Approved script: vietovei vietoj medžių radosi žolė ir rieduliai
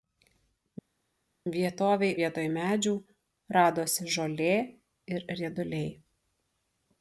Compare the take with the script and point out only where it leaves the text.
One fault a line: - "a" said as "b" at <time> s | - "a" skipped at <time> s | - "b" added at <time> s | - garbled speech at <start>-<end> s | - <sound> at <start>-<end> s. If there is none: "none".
none